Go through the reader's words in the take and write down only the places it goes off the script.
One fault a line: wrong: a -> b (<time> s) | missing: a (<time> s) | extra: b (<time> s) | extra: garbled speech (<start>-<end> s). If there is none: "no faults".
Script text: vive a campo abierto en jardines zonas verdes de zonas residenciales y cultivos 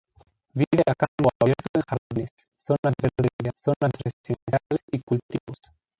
no faults